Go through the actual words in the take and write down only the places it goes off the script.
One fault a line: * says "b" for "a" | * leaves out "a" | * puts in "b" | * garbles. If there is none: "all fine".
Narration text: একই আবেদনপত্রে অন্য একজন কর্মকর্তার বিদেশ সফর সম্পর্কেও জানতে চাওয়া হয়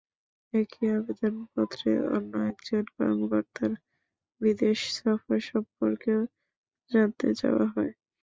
all fine